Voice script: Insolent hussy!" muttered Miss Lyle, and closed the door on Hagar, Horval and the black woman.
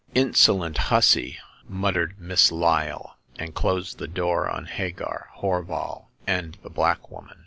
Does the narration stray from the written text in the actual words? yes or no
no